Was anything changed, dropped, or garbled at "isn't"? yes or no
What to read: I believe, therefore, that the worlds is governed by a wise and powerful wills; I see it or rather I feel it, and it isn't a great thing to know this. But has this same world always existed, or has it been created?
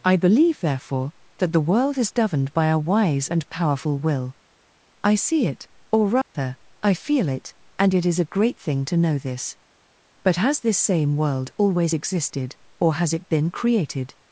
yes